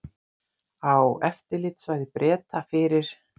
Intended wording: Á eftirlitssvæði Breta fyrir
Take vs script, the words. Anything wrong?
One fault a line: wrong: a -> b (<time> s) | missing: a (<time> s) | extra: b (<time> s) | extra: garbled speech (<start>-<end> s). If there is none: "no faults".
no faults